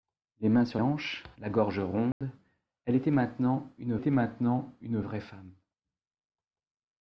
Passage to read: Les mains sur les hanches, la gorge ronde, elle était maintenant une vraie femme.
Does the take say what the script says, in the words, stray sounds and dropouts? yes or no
no